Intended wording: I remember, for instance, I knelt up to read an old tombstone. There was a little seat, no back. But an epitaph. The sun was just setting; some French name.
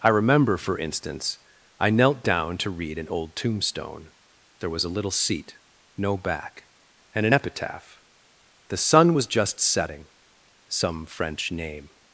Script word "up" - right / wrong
wrong